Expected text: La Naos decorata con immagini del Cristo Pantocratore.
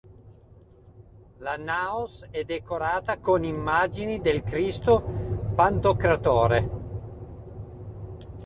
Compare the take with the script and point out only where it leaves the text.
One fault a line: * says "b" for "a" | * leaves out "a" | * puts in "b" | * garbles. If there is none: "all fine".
* puts in "è"